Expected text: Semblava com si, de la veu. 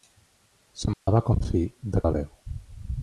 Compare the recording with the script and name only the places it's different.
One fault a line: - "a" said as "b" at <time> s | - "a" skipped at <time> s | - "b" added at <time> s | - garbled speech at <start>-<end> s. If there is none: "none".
none